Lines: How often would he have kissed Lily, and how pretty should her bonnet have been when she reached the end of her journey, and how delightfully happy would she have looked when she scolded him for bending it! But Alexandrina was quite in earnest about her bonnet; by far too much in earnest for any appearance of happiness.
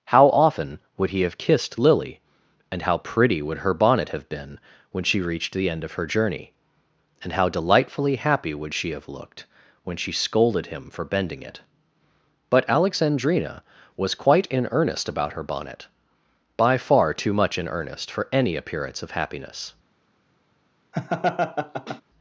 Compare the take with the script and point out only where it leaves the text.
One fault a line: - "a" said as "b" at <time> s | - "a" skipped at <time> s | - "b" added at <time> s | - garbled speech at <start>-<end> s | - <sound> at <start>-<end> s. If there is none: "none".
- "should" said as "would" at 3.4 s
- laugh at 20.9-22.0 s